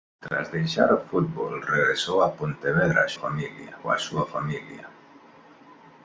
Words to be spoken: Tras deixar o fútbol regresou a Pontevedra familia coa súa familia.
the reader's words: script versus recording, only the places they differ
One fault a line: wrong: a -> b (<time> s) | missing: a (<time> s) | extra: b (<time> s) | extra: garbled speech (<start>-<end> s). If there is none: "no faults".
no faults